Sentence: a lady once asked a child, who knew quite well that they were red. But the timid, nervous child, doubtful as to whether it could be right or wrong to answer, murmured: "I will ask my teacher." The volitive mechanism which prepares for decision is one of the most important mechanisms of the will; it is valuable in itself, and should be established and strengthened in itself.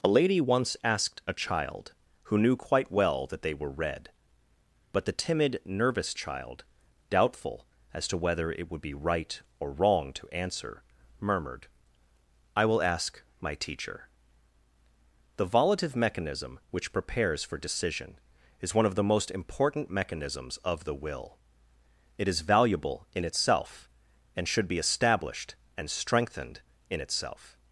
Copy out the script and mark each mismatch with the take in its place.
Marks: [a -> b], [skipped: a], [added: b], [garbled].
a lady once asked a child, who knew quite well that they were red. But the timid, nervous child, doubtful as to whether it [could -> would] be right or wrong to answer, murmured: "I will ask my teacher." The volitive mechanism which prepares for decision is one of the most important mechanisms of the will; it is valuable in itself, and should be established and strengthened in itself.